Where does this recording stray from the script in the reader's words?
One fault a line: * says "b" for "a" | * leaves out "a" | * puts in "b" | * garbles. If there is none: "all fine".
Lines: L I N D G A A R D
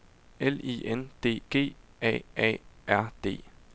all fine